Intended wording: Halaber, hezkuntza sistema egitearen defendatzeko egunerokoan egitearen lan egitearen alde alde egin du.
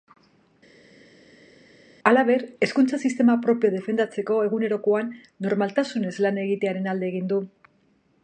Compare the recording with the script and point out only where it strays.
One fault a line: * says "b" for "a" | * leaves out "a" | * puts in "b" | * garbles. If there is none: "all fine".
* says "propioa" for "egitearen"
* says "normaltasunez" for "egitearen"
* leaves out "alde"